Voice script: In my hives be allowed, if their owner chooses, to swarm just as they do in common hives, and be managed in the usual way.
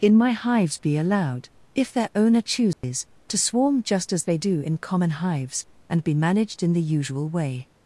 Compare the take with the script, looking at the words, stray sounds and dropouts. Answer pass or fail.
fail